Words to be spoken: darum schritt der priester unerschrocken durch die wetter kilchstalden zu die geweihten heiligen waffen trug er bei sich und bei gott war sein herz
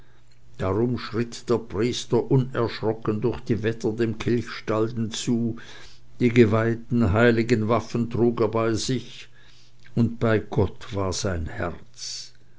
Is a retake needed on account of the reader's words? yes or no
yes